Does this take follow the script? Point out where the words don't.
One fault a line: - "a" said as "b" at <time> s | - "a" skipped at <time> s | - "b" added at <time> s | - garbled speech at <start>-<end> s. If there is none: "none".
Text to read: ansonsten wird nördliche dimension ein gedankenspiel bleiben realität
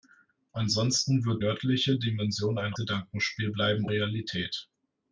none